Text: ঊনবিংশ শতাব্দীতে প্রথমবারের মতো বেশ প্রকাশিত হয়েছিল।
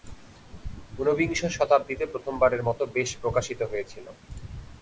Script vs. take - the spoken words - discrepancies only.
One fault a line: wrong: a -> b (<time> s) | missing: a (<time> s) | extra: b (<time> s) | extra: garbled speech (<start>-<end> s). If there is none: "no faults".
no faults